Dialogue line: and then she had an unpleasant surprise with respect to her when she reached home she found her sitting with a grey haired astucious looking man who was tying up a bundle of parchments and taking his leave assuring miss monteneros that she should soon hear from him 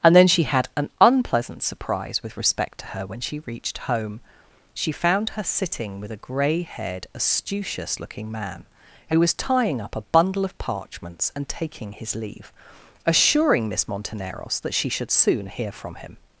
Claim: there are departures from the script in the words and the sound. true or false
false